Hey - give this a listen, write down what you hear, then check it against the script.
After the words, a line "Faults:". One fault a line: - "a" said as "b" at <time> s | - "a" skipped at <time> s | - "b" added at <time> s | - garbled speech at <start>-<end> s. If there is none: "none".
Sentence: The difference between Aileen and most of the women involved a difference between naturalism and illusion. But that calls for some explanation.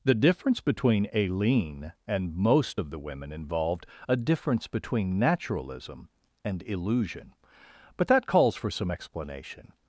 The difference between Aileen and most of the women involved a difference between naturalism and illusion. But that calls for some explanation.
Faults:
none